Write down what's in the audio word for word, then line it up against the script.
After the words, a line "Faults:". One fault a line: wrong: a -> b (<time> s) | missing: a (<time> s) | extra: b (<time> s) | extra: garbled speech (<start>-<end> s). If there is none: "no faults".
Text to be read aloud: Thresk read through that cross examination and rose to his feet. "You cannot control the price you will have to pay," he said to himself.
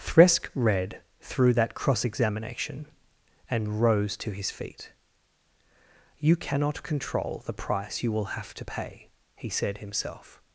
Thresk read through that cross examination and rose to his feet. "You cannot control the price you will have to pay," he said himself.
Faults:
missing: to (9.8 s)